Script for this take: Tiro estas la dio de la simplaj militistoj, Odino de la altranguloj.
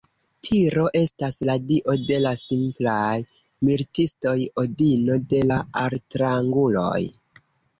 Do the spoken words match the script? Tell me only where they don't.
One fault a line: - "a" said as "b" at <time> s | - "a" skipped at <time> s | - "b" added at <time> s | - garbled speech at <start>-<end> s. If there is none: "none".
none